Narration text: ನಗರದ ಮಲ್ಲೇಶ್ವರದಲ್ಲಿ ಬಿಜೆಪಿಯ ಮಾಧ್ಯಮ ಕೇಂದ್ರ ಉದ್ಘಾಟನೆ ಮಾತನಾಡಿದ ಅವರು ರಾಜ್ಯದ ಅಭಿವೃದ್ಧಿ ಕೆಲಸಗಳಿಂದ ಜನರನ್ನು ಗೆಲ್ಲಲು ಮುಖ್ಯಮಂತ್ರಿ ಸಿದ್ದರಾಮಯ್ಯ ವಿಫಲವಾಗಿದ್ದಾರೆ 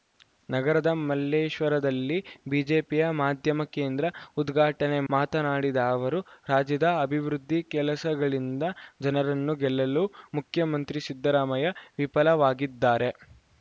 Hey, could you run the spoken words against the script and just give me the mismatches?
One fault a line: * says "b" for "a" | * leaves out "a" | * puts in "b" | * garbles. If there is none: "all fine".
all fine